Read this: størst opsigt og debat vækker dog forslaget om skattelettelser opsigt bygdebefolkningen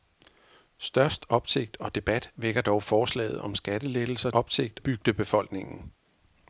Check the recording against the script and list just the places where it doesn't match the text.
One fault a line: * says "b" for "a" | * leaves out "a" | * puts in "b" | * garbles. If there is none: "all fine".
all fine